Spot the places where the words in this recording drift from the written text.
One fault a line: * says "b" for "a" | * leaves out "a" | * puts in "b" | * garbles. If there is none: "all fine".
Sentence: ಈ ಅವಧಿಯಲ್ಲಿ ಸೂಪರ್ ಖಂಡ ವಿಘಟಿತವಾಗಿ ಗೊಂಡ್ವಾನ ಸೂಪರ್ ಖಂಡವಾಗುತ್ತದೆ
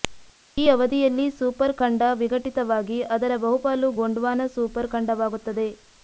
* puts in "ಅದರ ಬಹುಪಾಲು"